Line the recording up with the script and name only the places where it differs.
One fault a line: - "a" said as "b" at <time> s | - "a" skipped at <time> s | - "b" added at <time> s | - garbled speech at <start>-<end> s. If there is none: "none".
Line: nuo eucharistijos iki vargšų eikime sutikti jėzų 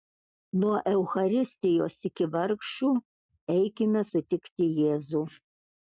none